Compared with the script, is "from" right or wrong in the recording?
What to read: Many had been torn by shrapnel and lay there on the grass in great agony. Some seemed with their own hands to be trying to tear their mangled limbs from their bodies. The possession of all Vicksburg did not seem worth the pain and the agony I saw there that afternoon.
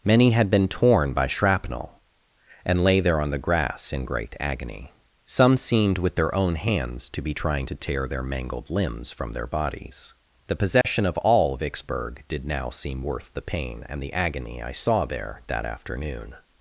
right